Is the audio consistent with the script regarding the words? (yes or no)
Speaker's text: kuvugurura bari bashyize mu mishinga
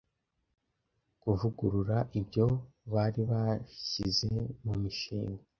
no